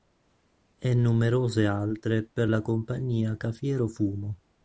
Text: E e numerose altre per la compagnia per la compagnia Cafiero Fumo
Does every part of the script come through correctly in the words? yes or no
no